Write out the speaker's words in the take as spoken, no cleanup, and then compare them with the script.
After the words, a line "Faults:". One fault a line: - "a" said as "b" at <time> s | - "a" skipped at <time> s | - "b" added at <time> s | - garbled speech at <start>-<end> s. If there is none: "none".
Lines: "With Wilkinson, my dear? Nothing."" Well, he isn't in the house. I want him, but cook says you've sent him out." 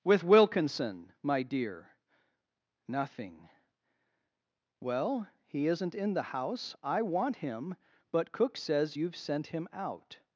"With Wilkinson, my dear? Nothing."" Well, he isn't in the house. I want him, but cook says you've sent him out."
Faults:
none